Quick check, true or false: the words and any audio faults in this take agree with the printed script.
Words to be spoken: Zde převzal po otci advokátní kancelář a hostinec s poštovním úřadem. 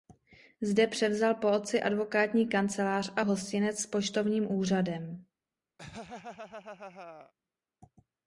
false